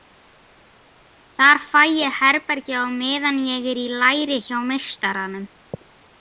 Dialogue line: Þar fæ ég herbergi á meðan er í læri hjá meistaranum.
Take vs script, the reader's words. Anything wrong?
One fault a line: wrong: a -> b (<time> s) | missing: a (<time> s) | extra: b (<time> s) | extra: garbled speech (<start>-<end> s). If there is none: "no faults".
extra: ég (3.5 s)